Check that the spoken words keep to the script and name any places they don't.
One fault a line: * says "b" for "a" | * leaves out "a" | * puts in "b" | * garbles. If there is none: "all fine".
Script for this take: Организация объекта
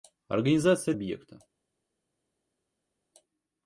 all fine